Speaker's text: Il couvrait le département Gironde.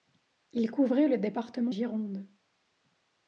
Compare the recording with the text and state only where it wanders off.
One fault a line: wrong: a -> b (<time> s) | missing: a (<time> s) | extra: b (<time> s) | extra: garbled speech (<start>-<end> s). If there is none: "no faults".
no faults